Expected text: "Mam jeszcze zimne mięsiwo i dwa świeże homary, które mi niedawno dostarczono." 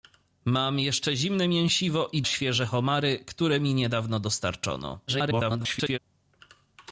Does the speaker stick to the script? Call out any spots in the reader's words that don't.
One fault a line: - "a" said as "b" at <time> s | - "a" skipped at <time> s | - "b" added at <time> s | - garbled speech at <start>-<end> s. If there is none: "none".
- "dwa" skipped at 2.2 s
- garbled speech at 5.1-6.0 s